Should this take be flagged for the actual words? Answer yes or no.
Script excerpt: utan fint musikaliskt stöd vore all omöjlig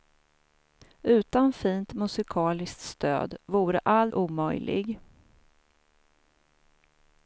no